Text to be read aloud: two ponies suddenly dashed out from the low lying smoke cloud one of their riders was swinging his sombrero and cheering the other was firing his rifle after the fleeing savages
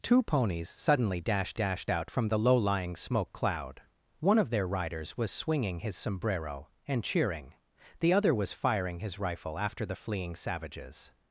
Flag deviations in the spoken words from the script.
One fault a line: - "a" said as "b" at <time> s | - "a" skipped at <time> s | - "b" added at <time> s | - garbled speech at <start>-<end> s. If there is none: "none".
- "dashed" added at 1.5 s